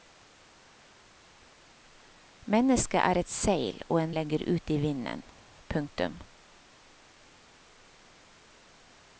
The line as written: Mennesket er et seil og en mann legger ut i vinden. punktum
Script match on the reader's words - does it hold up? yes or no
no